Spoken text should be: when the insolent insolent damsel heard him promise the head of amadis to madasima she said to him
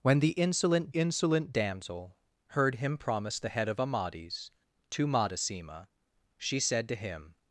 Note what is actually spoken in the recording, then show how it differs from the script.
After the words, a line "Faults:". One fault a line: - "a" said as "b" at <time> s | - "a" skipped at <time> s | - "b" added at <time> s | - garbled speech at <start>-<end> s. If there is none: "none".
when the insolent insolent damsel heard him promise the head of amadis to madasima she said to him
Faults:
none